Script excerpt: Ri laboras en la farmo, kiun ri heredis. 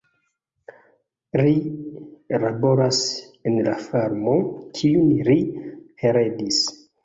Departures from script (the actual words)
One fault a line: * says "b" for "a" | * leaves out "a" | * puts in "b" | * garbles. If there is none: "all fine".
all fine